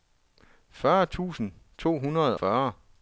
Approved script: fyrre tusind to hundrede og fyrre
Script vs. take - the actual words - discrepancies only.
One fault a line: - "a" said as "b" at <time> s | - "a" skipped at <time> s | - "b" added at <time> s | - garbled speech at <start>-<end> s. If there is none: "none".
- "og" skipped at 2.4 s